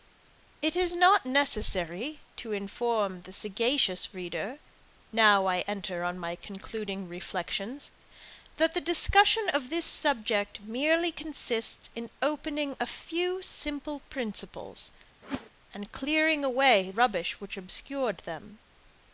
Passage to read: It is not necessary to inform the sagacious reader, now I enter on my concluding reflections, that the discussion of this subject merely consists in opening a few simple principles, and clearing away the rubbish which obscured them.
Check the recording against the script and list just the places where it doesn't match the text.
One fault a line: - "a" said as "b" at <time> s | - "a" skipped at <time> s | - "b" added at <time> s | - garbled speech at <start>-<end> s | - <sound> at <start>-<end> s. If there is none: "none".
- whoosh at 15.2-15.5 s
- "the" skipped at 16.9 s